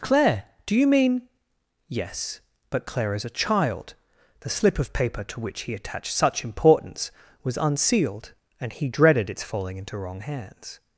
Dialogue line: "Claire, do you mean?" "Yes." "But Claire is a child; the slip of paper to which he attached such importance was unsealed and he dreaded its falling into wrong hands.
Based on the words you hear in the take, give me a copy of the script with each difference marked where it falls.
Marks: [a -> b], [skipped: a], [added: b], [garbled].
"Claire, do you mean?" "Yes." "But Claire is a child; the slip of paper to which he attached such importance was unsealed and he dreaded its falling into wrong hands.